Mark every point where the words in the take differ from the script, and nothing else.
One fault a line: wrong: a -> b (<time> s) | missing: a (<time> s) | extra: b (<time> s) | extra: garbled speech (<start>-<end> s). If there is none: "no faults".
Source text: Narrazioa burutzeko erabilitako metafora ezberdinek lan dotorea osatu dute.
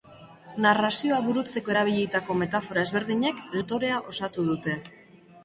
missing: lan (3.4 s)